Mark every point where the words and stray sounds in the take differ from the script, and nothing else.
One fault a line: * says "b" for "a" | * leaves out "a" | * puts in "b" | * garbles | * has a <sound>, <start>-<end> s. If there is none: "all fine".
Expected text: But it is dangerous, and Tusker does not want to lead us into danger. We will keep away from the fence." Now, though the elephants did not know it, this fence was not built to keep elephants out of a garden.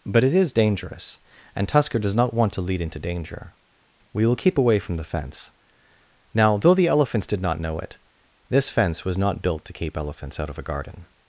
* leaves out "us"